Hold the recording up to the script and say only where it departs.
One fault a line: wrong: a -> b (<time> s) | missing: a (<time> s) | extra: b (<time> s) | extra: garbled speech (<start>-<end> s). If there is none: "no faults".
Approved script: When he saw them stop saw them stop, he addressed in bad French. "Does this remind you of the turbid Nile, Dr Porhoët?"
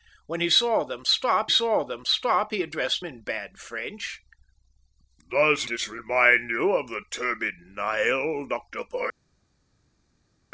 no faults